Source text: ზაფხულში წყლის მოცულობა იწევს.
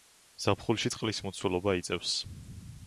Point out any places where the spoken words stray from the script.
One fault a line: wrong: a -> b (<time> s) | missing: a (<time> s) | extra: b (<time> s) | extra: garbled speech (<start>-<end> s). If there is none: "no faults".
no faults